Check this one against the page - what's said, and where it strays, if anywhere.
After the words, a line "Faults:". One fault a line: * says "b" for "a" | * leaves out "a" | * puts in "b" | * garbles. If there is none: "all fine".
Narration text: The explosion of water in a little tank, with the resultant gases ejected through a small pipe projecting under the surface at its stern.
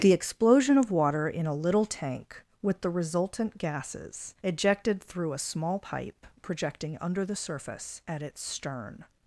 The explosion of water in a little tank, with the resultant gases ejected through a small pipe projecting under the surface at its stern.
Faults:
all fine